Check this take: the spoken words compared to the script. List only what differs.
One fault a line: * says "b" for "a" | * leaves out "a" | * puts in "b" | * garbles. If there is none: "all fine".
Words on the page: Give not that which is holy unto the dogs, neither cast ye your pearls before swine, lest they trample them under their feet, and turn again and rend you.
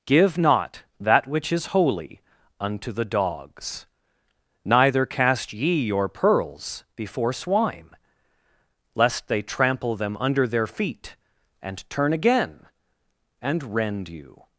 all fine